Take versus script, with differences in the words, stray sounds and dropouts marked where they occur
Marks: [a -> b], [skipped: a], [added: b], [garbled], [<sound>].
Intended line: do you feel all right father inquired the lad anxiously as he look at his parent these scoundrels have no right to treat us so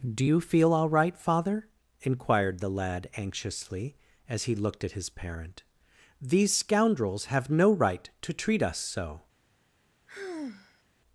do you feel all right father inquired the lad anxiously as he [look -> looked] at his parent these scoundrels have no right to treat us so [sigh]